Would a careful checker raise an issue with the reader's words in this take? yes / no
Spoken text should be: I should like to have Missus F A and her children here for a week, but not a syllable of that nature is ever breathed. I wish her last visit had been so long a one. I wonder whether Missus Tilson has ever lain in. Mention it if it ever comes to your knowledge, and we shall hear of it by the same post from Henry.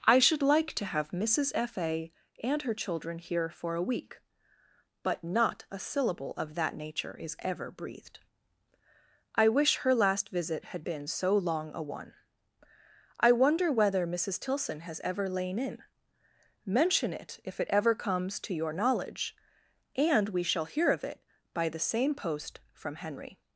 no